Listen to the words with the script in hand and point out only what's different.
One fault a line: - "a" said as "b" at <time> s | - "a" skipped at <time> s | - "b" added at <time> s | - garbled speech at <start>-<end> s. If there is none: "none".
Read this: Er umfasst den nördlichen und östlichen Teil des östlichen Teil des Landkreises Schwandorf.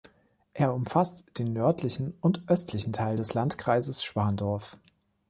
- "östlichen Teil des" skipped at 3.3 s